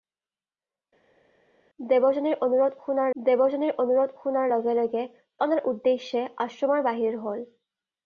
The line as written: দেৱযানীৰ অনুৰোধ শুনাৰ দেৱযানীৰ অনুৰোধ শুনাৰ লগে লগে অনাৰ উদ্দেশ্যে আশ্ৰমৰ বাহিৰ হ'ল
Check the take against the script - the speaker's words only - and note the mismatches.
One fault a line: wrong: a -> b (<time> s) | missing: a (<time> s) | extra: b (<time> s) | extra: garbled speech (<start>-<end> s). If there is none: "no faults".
no faults